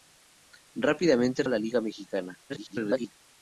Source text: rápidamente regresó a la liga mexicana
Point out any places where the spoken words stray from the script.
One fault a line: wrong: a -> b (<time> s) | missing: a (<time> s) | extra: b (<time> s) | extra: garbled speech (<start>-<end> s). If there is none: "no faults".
missing: regresó (1.4 s)
extra: garbled speech (2.5-3.1 s)